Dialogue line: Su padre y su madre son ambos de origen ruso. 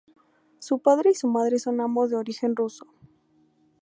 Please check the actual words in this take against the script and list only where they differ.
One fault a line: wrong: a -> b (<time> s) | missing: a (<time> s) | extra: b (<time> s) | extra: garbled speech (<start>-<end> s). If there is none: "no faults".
no faults